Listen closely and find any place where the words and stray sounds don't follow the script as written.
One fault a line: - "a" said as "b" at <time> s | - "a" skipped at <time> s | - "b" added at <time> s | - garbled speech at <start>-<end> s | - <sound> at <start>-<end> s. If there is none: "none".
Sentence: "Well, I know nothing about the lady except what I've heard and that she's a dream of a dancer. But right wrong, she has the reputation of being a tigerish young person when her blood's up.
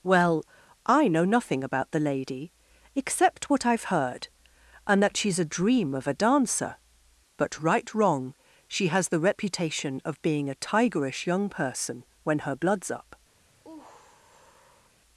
- sigh at 13.6-14.9 s